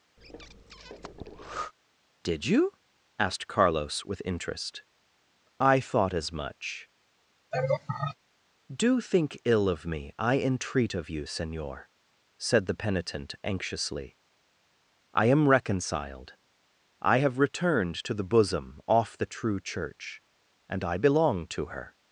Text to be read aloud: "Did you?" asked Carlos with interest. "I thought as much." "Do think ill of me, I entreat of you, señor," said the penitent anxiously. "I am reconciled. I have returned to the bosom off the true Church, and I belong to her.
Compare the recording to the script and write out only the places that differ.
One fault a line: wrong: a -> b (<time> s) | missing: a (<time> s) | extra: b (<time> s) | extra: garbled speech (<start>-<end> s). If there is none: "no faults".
no faults